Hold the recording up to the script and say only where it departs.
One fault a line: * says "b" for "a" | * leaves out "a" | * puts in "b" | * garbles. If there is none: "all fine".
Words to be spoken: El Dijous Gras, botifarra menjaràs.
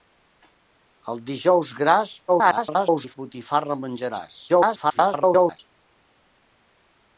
* garbles
* garbles